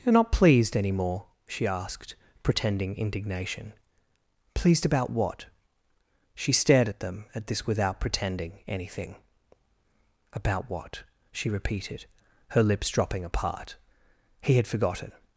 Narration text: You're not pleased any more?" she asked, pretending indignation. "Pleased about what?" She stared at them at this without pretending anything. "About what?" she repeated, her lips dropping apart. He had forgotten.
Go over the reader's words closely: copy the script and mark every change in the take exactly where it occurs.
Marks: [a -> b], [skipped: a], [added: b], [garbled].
You're not pleased any more?" she asked, pretending indignation. "Pleased about what?" She stared at them at this without pretending anything. "About what?" she repeated, her lips dropping apart. He had forgotten.